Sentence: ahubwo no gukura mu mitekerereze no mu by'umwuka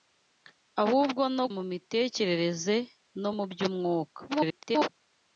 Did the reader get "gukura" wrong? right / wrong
wrong